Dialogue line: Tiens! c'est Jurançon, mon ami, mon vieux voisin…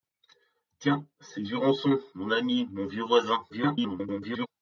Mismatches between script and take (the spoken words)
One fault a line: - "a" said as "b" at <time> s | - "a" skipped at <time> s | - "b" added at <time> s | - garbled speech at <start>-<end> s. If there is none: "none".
- garbled speech at 3.5-4.5 s